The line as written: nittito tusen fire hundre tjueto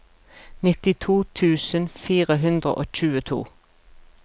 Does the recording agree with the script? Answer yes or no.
no